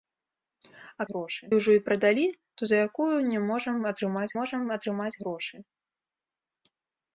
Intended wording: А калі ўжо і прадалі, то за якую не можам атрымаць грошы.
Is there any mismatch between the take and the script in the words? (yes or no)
yes